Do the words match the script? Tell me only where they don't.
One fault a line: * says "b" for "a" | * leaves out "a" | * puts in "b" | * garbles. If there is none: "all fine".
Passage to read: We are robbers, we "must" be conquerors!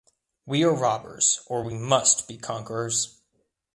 * puts in "or"